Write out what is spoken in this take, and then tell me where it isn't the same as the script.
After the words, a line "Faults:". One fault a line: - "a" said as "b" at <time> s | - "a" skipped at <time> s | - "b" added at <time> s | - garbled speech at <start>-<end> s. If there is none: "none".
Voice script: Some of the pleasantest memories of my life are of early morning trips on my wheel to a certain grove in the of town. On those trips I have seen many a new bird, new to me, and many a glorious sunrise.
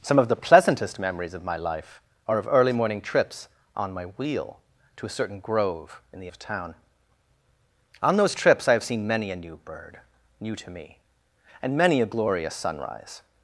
Some of the pleasantest memories of my life are of early morning trips on my wheel to a certain grove in the of town. On those trips I have seen many a new bird, new to me, and many a glorious sunrise.
Faults:
none